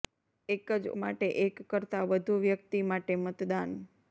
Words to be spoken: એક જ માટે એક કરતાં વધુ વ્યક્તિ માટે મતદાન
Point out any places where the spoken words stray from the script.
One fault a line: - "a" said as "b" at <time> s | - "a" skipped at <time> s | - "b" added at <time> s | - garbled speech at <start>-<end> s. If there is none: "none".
none